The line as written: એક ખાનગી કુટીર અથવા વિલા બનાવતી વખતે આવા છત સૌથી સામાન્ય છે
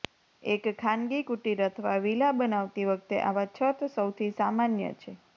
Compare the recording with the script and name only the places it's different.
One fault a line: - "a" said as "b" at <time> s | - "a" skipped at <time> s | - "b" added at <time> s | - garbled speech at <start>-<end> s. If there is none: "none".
none